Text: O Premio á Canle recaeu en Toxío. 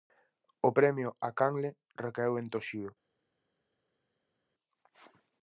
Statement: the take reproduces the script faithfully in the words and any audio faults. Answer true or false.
true